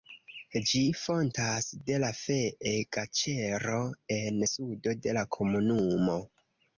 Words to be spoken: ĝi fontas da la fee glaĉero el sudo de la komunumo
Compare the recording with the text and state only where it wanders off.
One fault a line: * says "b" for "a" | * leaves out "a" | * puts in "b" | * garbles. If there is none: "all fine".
* says "de" for "da"
* says "en" for "el"